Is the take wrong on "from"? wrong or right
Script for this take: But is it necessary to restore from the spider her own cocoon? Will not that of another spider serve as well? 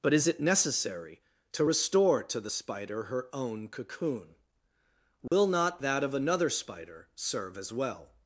wrong